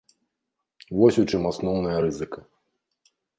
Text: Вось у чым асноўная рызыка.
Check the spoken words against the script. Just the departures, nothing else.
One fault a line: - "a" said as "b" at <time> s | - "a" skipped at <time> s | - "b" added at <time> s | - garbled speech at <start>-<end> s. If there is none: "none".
none